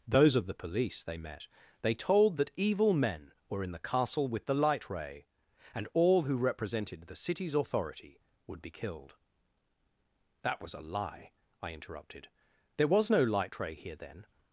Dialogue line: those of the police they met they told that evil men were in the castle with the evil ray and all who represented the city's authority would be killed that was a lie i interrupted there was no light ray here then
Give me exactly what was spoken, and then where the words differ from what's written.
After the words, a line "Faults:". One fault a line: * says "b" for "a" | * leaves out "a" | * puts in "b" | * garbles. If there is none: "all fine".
those of the police they met they told that evil men were in the castle with the light ray and all who represented the city's authority would be killed that was a lie i interrupted there was no light ray here then
Faults:
* says "light" for "evil"